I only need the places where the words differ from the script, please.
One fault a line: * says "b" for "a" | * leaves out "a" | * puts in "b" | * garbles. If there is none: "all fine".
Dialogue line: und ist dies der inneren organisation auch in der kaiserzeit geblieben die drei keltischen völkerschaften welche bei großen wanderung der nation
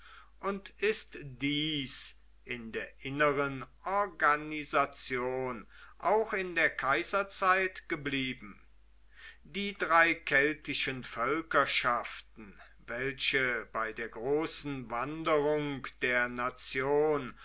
* puts in "in"
* puts in "der"